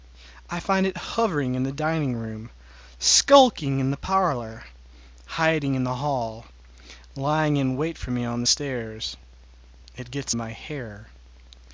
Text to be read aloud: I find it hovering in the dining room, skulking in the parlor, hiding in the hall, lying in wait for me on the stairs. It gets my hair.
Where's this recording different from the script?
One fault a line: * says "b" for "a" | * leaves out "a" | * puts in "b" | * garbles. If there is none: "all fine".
all fine